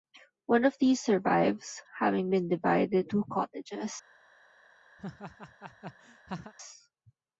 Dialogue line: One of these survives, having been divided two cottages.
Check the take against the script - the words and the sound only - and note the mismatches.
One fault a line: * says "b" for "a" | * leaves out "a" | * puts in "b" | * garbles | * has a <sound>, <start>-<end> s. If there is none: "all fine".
* has a laugh, 5.0-6.5 s